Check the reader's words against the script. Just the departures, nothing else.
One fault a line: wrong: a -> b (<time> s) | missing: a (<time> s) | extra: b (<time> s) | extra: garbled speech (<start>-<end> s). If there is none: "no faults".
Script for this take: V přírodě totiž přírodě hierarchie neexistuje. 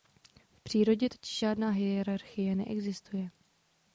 wrong: přírodě -> žádná (1.4 s)